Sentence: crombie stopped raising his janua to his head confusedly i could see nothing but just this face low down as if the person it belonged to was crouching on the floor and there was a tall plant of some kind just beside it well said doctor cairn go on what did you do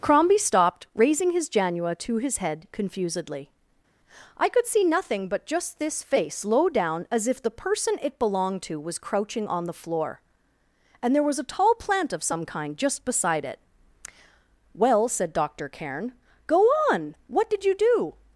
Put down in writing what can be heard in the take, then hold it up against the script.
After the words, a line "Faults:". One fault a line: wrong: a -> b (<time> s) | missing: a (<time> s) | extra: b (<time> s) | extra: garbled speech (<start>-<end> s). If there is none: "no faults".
crombie stopped raising his janua to his head confusedly i could see nothing but just this face low down as if the person it belonged to was crouching on the floor and there was a tall plant of some kind just beside it well said doctor cairn go on what did you do
Faults:
no faults